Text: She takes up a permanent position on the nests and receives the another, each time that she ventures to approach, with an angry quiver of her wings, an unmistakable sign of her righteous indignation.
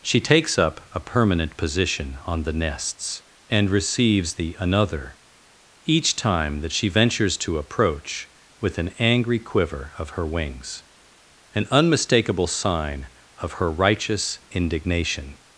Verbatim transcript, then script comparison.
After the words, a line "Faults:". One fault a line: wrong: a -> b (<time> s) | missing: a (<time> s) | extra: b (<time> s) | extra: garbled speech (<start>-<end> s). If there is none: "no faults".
She takes up a permanent position on the nests and receives the another, each time that she ventures to approach, with an angry quiver of her wings, an unmistakable sign of her righteous indignation.
Faults:
no faults